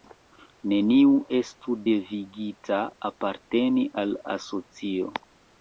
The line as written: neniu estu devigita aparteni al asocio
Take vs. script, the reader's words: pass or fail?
pass